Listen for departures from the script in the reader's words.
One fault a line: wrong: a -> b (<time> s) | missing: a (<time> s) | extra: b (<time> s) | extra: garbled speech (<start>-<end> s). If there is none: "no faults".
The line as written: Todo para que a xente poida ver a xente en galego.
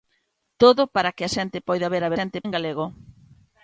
no faults